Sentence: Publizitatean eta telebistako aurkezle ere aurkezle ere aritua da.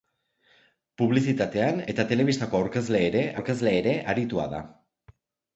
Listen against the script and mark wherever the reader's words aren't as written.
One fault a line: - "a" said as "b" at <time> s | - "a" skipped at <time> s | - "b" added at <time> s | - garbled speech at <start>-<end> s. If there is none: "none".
none